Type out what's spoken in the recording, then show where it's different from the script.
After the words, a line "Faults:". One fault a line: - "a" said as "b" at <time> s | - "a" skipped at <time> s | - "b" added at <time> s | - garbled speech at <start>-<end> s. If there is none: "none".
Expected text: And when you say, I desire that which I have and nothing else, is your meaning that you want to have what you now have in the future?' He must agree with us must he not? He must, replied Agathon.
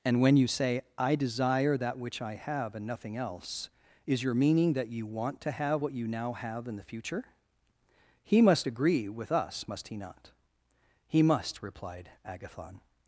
And when you say, I desire that which I have and nothing else, is your meaning that you want to have what you now have in the future?' He must agree with us must he not? He must, replied Agathon.
Faults:
none